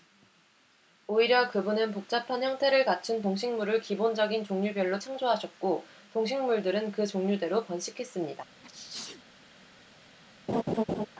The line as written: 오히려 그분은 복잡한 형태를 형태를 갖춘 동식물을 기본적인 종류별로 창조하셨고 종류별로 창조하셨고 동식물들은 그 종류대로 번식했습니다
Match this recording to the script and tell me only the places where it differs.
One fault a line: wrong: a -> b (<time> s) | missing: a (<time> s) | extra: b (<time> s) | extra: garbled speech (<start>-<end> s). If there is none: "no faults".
missing: 형태를 (2.9 s)
missing: 종류별로 창조하셨고 (5.8 s)